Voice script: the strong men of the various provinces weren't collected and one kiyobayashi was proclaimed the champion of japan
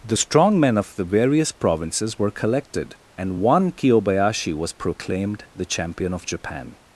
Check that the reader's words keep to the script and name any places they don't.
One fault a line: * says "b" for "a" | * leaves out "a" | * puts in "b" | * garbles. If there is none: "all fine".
* says "were" for "weren't"